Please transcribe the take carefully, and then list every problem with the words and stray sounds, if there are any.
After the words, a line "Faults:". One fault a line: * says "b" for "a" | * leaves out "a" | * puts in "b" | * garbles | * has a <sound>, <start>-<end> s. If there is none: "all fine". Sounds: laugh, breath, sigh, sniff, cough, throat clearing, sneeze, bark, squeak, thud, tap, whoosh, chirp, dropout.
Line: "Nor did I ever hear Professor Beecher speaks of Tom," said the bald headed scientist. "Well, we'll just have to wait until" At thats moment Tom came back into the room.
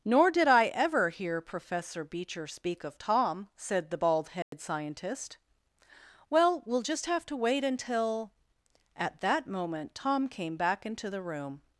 "Nor did I ever hear Professor Beecher speak of Tom," said the bald headed scientist. "Well, we'll just have to wait until" At that moment Tom came back into the room.
Faults:
* says "speak" for "speaks"
* has a dropout, 4.4-4.5 s
* says "that" for "thats"